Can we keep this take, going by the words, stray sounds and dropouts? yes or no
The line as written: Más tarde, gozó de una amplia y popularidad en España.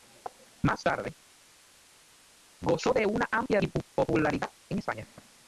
yes